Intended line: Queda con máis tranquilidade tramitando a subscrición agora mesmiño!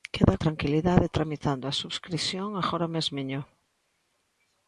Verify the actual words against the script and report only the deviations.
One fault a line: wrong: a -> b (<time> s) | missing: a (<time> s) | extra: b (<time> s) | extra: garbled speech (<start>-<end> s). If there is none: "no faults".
missing: con máis (0.3 s)